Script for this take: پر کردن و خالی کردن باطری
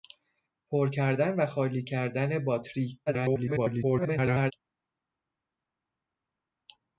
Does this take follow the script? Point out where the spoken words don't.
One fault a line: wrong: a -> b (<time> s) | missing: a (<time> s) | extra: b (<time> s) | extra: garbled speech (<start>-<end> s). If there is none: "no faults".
extra: garbled speech (3.1-4.5 s)